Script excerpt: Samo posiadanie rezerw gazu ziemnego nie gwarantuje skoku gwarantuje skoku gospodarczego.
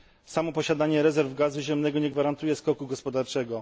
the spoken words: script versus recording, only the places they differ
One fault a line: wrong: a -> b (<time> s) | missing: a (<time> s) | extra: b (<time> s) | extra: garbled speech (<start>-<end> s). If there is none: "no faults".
missing: gwarantuje skoku (2.9 s)